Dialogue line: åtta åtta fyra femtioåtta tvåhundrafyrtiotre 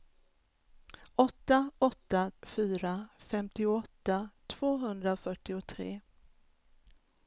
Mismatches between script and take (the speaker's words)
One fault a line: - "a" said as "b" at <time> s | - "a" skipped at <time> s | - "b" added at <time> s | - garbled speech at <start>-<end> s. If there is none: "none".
none